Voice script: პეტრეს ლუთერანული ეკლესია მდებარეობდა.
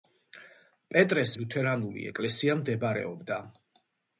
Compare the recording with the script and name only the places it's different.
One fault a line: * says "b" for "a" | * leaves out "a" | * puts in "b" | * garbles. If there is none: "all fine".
all fine